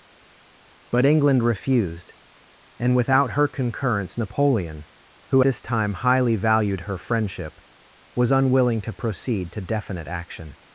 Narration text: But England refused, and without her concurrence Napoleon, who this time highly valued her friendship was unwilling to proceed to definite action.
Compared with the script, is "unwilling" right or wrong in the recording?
right